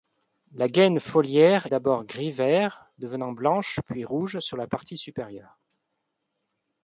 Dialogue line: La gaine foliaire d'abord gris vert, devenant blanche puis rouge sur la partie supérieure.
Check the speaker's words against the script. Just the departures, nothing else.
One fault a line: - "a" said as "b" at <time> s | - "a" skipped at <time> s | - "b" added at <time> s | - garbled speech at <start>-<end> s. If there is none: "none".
none